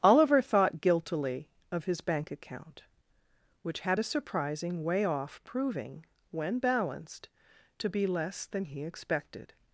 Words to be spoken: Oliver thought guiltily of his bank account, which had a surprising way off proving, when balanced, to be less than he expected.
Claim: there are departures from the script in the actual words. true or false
false